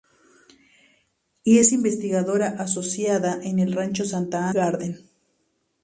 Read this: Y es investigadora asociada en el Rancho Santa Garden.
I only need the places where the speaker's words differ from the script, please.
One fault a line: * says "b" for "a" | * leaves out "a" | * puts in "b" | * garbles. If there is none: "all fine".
all fine